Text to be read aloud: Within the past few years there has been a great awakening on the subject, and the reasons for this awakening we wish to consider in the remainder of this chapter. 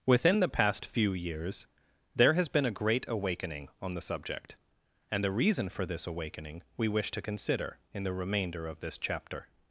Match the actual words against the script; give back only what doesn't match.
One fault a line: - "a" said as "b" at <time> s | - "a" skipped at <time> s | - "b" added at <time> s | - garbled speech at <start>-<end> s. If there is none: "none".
- "reasons" said as "reason" at 5.3 s